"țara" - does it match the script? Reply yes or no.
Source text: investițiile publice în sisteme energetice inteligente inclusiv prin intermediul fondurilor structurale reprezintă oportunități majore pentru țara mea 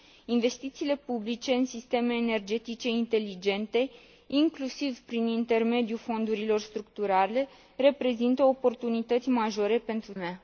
no